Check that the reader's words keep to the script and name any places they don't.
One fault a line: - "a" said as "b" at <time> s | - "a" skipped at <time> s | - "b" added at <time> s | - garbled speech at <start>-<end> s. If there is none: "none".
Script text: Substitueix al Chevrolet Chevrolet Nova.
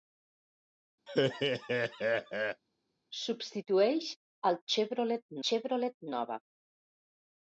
none